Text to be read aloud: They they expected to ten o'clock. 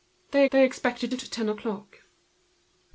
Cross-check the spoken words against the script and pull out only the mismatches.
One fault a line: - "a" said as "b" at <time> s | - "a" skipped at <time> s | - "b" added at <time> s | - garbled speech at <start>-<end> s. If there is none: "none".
none